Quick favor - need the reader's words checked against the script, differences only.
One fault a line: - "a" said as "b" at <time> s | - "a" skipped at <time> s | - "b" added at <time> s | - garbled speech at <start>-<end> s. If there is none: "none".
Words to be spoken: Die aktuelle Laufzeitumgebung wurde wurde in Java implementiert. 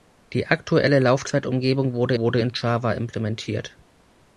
none